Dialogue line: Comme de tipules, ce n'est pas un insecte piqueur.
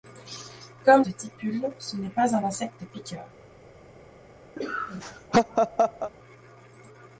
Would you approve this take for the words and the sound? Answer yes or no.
no